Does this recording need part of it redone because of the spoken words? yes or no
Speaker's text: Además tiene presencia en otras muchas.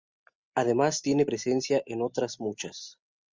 no